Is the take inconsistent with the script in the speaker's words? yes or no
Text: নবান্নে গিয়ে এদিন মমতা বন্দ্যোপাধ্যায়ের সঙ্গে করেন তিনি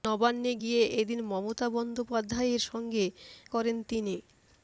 no